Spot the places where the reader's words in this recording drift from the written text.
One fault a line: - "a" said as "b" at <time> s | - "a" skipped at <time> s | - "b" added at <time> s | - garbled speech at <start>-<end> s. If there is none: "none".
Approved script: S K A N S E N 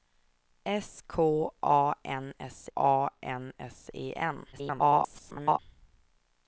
- "A N S" added at 2.7 s
- garbled speech at 4.5-5.6 s